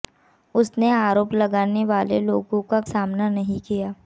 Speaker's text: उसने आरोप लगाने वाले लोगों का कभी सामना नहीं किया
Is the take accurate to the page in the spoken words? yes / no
no